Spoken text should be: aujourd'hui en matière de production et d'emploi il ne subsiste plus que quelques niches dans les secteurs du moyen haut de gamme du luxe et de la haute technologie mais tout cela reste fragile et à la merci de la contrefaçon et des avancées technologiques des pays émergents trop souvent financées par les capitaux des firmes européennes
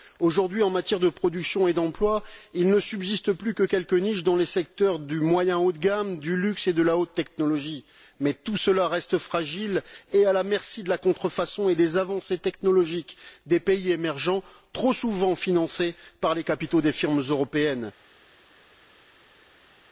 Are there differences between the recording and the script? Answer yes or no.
no